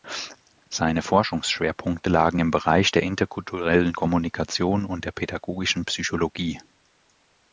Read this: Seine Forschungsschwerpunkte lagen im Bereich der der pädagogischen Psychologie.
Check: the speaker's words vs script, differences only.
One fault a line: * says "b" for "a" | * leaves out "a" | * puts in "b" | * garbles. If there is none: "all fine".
* puts in "interkulturellen Kommunikation und"